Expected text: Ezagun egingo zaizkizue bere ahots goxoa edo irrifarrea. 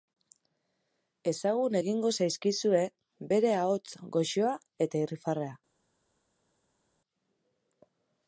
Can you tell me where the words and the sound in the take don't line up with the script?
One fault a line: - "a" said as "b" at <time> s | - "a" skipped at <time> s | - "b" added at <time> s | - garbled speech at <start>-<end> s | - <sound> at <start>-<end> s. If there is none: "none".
- "edo" said as "eta" at 4.9 s